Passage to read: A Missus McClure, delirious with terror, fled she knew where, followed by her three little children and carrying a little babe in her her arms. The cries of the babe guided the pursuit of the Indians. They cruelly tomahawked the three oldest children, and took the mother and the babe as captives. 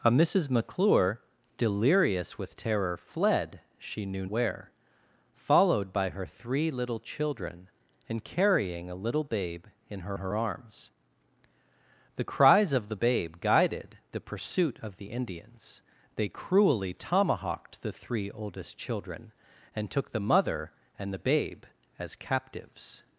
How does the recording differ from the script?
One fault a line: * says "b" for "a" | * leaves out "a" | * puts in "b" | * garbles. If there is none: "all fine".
all fine